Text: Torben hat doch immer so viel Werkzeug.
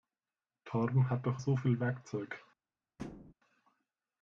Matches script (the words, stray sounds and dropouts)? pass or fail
fail